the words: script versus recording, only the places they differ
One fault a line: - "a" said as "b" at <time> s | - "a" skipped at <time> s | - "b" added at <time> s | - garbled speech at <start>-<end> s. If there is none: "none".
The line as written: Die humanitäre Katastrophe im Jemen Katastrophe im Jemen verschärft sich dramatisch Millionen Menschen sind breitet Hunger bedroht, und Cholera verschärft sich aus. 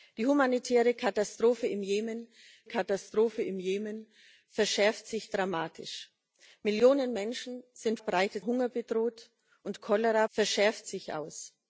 none